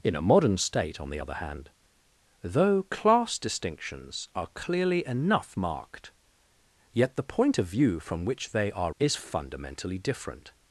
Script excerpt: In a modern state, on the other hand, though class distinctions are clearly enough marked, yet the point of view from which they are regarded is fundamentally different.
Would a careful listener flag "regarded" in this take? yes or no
yes